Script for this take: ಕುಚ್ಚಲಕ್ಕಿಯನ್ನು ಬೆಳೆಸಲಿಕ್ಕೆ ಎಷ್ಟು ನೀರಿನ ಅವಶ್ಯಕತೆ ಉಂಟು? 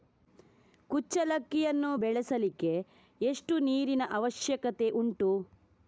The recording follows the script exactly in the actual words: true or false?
true